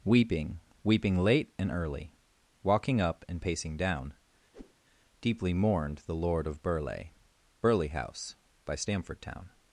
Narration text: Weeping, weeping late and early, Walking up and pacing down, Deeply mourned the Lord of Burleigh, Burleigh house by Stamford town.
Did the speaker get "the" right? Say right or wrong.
right